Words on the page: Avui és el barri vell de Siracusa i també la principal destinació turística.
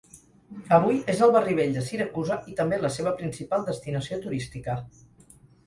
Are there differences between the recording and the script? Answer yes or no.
yes